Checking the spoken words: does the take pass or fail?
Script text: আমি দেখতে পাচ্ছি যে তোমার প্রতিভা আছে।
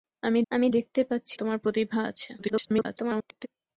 fail